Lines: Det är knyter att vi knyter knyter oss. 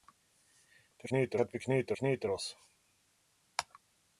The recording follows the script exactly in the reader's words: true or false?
true